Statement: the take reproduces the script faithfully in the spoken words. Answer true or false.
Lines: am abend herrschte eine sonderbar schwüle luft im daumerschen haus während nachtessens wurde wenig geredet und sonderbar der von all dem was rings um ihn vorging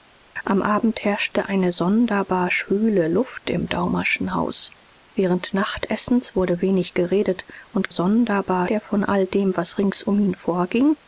true